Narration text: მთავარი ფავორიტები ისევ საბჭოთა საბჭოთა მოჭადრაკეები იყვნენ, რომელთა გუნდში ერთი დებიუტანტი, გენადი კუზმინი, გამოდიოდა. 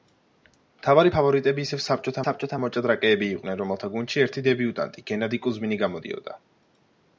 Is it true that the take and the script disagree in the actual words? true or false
false